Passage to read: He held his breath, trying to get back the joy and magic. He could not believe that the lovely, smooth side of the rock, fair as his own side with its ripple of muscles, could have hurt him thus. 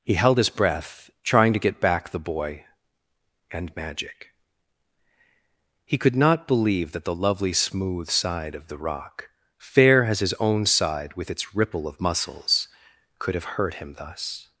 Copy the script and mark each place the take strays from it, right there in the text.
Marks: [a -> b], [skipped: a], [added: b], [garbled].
He held his breath, trying to get back the [joy -> boy] and magic. He could not believe that the lovely, smooth side of the rock, fair as his own side with its ripple of muscles, could have hurt him thus.